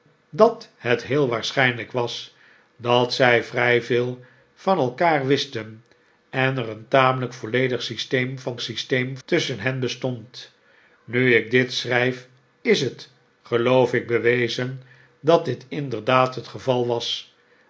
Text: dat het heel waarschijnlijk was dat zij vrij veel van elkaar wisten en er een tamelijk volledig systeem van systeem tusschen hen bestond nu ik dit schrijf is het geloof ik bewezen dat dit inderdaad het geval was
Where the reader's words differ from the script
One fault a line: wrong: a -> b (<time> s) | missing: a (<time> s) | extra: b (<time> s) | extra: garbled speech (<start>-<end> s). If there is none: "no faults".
no faults